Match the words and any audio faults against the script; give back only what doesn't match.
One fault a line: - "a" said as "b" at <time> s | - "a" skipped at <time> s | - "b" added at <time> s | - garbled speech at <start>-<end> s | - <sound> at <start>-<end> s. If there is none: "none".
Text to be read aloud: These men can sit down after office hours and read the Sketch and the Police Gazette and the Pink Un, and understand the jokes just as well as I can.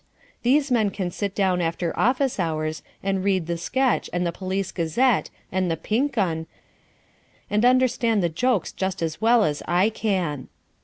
none